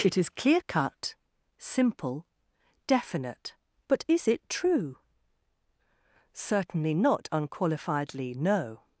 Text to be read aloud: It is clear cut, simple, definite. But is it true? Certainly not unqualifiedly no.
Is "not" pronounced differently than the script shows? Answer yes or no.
no